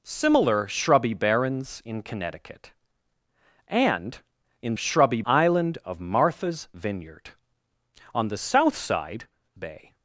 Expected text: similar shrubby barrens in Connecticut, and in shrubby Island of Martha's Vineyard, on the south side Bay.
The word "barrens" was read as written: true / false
true